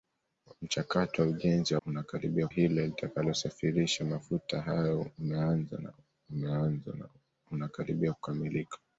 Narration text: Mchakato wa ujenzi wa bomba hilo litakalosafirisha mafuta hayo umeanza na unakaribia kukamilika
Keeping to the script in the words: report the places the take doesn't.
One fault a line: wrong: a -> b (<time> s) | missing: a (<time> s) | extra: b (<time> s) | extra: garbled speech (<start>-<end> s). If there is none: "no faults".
wrong: bomba -> unakaribia (1.9 s)
extra: umeanza na (6.3 s)